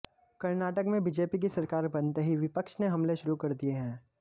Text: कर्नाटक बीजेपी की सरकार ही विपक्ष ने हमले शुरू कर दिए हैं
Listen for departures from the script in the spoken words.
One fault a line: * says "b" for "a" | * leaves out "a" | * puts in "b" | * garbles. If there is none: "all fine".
* puts in "में"
* puts in "बनते"